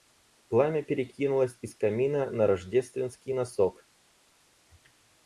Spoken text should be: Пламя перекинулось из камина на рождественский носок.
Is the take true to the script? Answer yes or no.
yes